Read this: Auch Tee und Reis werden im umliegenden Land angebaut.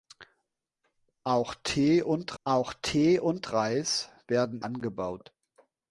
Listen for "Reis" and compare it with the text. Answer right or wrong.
wrong